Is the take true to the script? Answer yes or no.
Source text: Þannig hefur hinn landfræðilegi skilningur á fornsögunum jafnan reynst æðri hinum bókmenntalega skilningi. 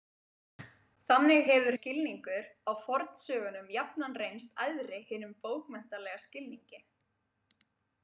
no